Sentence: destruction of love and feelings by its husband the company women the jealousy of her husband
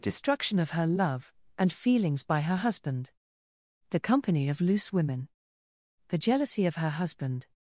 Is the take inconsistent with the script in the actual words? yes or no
yes